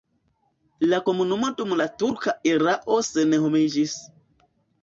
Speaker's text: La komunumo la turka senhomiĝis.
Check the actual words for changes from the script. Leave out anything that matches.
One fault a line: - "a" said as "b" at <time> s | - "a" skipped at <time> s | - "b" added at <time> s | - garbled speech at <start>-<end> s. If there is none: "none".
- "dum" added at 1.6 s
- "erao" added at 2.5 s